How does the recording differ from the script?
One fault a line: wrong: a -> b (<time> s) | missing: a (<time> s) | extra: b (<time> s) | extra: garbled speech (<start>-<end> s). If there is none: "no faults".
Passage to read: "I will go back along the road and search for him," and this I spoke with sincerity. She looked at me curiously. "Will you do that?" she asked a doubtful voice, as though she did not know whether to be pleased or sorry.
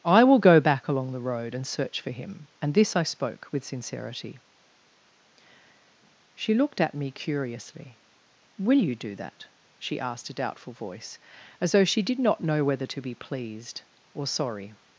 no faults